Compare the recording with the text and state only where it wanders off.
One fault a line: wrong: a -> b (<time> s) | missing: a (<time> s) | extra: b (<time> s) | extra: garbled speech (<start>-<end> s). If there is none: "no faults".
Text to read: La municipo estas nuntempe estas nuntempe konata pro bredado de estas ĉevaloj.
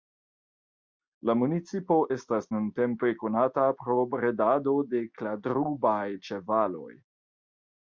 missing: estas nuntempe (3.1 s)
wrong: estas -> kladrubaj (5.2 s)